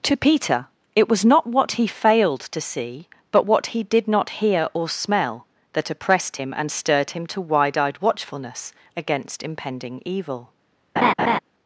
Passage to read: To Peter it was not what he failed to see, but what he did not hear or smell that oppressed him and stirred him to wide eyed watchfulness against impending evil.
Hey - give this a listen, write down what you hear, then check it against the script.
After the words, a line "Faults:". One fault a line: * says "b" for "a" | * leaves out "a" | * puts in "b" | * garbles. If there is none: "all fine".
To Peter it was not what he failed to see, but what he did not hear or smell that oppressed him and stirred him to wide eyed watchfulness against impending evil.
Faults:
all fine